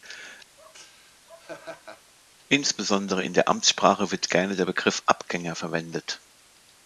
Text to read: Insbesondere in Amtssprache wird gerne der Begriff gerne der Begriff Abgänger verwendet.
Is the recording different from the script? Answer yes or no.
yes